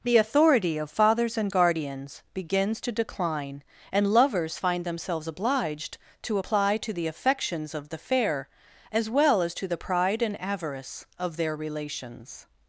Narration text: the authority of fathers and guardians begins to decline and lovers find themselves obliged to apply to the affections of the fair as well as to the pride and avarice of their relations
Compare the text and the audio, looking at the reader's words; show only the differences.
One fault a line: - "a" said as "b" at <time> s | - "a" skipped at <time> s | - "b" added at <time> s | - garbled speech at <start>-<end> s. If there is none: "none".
none